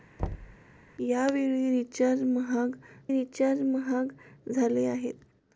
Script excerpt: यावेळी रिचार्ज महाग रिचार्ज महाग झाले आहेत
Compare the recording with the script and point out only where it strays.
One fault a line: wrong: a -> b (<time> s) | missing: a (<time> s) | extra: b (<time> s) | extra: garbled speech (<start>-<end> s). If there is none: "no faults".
no faults